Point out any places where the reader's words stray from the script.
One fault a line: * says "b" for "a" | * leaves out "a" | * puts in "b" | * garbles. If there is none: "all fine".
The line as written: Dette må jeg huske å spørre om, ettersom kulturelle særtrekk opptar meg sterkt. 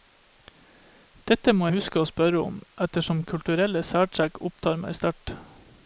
* leaves out "jeg"